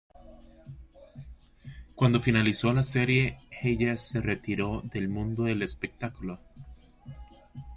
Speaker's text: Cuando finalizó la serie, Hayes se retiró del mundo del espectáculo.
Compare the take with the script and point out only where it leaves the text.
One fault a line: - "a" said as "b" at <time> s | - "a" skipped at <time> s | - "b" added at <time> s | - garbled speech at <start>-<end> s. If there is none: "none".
none